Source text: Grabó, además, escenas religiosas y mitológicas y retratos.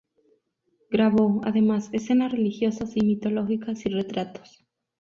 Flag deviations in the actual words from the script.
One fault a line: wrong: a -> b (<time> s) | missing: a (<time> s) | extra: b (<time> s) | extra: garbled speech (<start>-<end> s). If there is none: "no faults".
no faults